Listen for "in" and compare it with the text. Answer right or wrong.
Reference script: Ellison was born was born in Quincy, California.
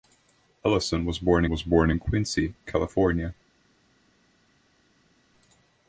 right